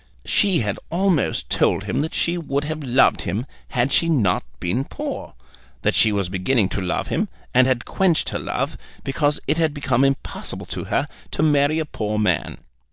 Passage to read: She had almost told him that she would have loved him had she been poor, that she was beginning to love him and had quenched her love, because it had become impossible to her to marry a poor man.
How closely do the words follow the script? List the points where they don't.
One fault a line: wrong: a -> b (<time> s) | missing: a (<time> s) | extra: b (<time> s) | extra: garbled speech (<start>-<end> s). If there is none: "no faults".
extra: not (4.1 s)